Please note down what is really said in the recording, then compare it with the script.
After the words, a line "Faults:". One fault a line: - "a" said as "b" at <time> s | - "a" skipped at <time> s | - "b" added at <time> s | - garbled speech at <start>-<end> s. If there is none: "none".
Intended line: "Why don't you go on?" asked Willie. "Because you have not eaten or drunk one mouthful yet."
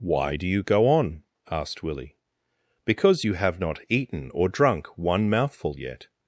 "Why do you go on?" asked Willie. "Because you have not eaten or drunk one mouthful yet."
Faults:
- "don't" said as "do" at 0.3 s